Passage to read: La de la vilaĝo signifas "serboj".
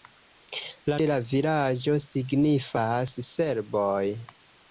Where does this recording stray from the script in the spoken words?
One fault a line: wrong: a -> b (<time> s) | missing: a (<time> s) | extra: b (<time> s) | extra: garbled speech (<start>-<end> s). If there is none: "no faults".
no faults